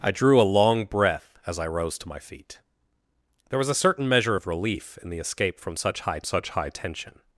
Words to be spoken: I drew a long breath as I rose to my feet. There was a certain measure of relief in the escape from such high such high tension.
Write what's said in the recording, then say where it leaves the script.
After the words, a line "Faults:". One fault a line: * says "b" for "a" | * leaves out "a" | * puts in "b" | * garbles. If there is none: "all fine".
I drew a long breath as I rose to my feet. There was a certain measure of relief in the escape from such high such high tension.
Faults:
all fine